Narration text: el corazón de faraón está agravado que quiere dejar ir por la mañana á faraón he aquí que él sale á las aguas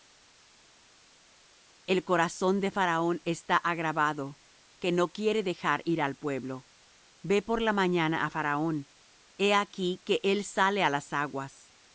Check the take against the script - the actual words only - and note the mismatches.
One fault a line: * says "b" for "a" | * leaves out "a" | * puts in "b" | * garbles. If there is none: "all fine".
* puts in "no"
* puts in "al pueblo ve"